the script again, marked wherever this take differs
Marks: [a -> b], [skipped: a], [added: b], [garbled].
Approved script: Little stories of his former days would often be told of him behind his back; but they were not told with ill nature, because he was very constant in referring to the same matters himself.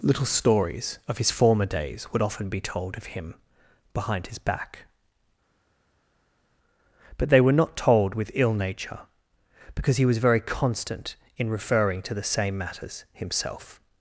Little stories of his former days would often be told of him behind his back; but they were not told with ill nature, because he was very constant in referring to the same matters himself.